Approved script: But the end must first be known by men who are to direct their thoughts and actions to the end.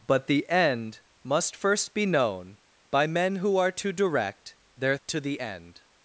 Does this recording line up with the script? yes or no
no